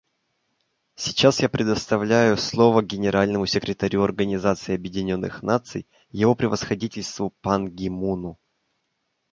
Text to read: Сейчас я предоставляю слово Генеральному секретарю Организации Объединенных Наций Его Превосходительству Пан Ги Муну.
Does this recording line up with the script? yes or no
yes